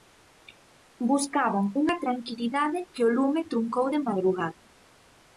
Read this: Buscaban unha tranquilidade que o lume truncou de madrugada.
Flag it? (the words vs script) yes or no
no